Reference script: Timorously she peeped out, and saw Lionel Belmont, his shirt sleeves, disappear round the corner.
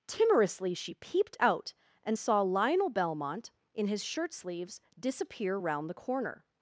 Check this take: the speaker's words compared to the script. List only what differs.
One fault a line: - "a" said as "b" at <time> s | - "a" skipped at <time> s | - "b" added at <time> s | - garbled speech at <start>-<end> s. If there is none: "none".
- "in" added at 3.7 s